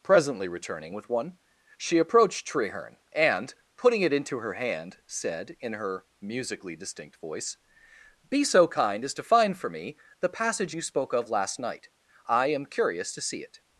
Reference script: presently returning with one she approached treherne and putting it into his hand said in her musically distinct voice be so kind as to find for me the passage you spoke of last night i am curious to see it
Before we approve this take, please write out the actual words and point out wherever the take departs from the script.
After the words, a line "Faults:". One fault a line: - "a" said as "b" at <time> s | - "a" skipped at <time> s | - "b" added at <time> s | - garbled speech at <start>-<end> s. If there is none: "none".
presently returning with one she approached treherne and putting it into her hand said in her musically distinct voice be so kind as to find for me the passage you spoke of last night i am curious to see it
Faults:
- "his" said as "her" at 4.4 s